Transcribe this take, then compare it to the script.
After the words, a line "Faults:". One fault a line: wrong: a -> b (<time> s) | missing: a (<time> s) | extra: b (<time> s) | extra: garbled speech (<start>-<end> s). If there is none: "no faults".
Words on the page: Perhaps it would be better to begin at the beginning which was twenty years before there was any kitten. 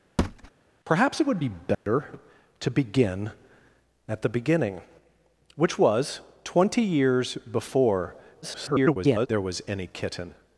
Perhaps it would be better to begin at the beginning which was twenty years before [garbled] there was any kitten.
Faults:
extra: garbled speech (8.4-9.3 s)